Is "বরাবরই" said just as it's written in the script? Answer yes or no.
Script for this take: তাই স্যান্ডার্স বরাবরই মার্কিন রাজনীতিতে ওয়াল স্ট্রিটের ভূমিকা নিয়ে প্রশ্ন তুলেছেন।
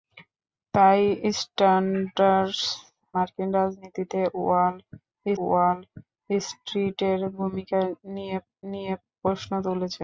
no